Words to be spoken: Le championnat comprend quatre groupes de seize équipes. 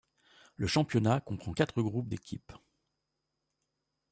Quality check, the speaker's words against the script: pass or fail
fail